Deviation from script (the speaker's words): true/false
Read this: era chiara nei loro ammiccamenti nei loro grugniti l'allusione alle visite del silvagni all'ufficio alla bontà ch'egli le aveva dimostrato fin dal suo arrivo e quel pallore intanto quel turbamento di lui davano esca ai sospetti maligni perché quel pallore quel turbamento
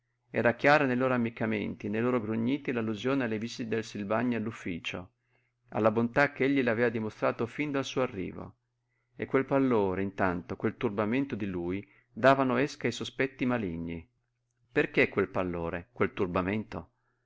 false